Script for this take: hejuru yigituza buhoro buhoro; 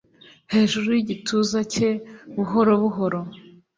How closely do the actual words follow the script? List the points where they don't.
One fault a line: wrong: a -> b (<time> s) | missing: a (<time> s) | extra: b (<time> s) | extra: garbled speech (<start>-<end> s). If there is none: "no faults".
extra: cye (1.7 s)